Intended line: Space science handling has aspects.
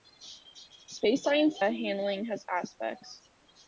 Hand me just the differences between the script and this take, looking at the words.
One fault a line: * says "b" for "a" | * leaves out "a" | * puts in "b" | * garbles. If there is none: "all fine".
all fine